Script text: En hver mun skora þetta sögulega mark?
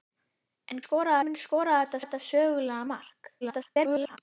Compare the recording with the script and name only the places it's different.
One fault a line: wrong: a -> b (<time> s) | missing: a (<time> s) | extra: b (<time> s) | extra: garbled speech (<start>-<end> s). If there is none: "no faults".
wrong: hver -> skora (0.8 s)
extra: þetta (2.0 s)
extra: garbled speech (3.4-4.2 s)